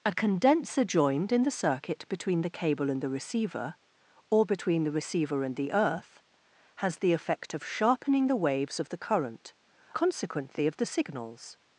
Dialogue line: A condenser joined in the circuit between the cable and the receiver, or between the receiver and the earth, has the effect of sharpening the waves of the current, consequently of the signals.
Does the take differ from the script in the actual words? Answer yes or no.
no